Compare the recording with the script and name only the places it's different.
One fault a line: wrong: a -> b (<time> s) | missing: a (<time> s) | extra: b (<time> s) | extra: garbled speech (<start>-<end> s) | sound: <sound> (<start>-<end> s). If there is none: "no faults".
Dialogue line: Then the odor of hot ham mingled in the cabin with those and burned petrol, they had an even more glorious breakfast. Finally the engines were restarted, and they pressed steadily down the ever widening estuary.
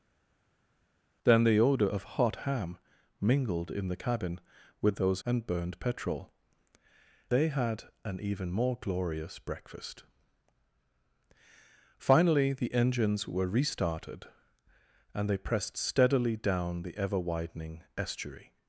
no faults